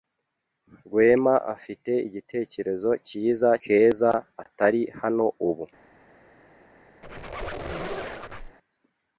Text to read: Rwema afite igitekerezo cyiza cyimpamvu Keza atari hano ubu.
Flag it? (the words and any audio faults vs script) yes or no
yes